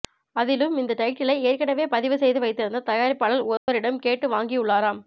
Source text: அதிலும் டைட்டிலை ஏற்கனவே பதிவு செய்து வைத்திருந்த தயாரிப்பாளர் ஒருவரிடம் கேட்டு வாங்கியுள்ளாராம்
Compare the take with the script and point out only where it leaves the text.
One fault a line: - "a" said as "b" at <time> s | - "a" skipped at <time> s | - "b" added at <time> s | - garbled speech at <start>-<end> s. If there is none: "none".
- "இந்த" added at 0.8 s